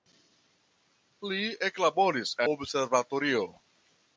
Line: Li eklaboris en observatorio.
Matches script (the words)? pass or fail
fail